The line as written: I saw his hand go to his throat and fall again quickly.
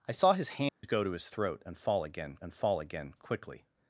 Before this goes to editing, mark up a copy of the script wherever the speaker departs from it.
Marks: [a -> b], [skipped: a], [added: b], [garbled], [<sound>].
I saw his hand [dropout] go to his throat and fall again [added: and fall again] quickly.